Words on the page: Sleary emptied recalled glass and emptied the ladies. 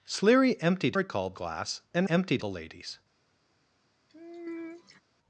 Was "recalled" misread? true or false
false